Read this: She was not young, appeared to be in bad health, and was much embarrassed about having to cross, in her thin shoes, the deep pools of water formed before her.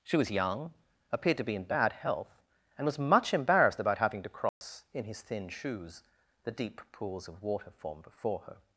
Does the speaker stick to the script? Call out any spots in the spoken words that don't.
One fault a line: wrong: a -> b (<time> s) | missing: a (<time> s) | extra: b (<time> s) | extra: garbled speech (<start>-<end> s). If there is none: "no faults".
missing: not (0.3 s)
wrong: her -> his (5.1 s)